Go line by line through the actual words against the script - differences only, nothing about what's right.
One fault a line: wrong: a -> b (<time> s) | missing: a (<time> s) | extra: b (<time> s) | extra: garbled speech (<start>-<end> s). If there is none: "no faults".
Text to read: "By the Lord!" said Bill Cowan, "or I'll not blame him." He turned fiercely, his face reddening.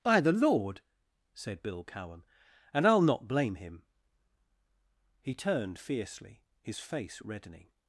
wrong: or -> and (2.7 s)